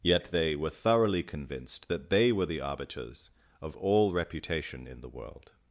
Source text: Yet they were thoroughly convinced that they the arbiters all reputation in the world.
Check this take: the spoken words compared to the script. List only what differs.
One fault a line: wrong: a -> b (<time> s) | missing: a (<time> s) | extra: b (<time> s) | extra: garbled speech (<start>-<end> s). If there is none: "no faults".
extra: were (2.3 s)
extra: of (3.6 s)